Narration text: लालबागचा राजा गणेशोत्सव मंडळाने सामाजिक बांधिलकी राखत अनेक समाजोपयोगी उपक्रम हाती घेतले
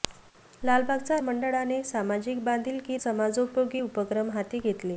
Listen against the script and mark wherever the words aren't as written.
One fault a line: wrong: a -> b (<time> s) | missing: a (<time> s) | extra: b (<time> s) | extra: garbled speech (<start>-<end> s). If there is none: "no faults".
missing: राजा गणेशोत्सव (1.2 s)
missing: राखत अनेक (3.0 s)